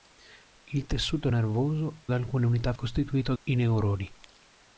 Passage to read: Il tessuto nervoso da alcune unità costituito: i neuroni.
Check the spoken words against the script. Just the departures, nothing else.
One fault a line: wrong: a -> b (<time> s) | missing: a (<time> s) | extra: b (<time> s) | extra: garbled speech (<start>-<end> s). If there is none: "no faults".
no faults